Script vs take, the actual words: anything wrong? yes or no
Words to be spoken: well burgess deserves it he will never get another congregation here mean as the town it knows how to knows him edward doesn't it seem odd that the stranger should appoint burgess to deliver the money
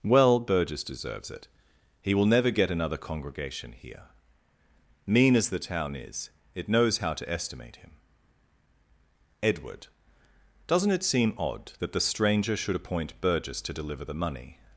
yes